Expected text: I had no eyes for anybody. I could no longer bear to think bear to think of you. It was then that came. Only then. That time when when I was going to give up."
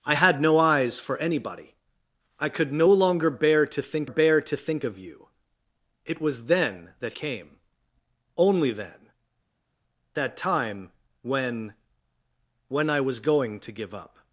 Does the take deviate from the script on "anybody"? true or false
false